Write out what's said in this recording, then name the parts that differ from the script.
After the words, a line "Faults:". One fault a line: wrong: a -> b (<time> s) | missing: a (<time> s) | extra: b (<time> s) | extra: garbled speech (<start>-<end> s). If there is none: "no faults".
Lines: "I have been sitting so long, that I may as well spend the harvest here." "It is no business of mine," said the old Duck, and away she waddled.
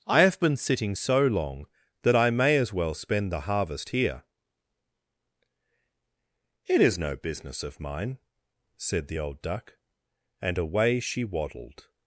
"I have been sitting so long, that I may as well spend the harvest here." "It is no business of mine," said the old Duck, and away she waddled.
Faults:
no faults